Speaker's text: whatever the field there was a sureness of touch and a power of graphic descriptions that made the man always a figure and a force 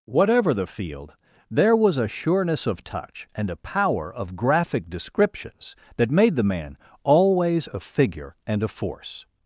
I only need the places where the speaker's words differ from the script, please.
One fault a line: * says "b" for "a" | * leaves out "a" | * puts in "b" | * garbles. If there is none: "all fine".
all fine